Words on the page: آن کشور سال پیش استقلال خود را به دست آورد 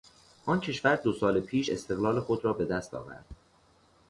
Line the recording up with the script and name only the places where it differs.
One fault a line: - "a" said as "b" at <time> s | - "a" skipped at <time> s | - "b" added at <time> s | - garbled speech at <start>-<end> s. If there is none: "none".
- "دو" added at 0.9 s